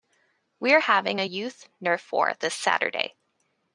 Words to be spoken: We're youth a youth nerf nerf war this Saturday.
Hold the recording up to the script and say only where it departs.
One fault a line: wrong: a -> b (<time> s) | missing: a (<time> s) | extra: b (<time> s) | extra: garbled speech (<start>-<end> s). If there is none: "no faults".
wrong: youth -> having (0.8 s)
missing: nerf (2.1 s)